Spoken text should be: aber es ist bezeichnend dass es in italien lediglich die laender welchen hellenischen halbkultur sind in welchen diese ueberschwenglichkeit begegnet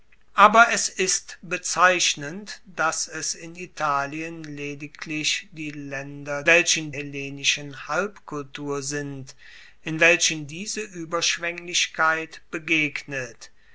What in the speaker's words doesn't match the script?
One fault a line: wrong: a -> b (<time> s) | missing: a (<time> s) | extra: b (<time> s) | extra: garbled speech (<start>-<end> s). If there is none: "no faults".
no faults